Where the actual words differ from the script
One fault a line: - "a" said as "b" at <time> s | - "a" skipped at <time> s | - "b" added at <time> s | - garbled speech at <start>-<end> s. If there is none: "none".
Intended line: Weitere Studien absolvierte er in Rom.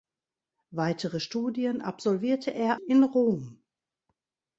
none